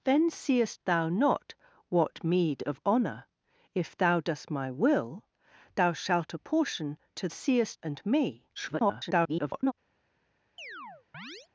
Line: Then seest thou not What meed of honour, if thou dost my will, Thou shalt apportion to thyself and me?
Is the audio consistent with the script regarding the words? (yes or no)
no